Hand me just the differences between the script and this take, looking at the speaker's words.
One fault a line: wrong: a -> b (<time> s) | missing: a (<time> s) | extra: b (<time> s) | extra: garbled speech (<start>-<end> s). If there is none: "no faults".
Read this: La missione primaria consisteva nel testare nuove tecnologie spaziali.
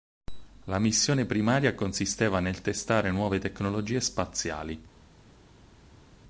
no faults